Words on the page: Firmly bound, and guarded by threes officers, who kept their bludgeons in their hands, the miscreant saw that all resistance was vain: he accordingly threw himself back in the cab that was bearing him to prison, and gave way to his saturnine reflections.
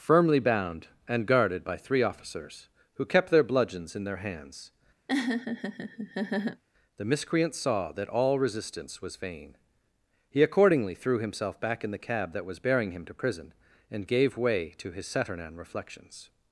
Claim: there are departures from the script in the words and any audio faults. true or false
true